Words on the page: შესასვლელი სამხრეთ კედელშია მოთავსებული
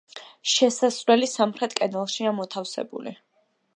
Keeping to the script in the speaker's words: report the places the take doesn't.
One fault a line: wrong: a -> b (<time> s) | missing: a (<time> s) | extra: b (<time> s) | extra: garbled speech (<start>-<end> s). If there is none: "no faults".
no faults